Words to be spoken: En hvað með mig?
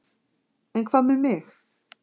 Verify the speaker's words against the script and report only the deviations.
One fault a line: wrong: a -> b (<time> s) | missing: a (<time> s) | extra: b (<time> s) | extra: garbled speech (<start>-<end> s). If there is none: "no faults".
no faults